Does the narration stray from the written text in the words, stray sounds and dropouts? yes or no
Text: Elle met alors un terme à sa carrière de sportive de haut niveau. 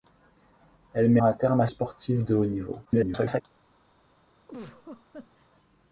yes